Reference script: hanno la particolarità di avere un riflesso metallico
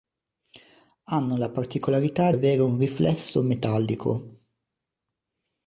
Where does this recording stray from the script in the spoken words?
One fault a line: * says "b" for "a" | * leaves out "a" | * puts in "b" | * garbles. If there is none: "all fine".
* leaves out "di"